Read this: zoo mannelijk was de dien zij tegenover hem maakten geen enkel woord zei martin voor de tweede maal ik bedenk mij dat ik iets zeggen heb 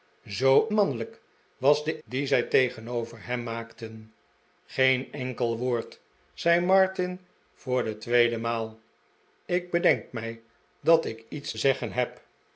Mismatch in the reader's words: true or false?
false